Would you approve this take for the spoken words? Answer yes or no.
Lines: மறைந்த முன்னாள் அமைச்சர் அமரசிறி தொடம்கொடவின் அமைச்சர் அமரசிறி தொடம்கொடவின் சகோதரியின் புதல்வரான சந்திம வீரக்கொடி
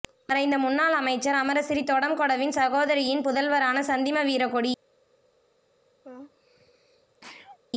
no